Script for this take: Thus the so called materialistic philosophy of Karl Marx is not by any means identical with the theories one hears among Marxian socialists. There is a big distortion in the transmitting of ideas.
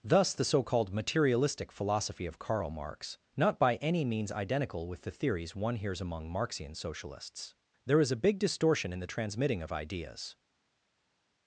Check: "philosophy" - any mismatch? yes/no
no